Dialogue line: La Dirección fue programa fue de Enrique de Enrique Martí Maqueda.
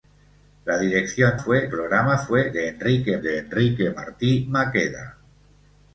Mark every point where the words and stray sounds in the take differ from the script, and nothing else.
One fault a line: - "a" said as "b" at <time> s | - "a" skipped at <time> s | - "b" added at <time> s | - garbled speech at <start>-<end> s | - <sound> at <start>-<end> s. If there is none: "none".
none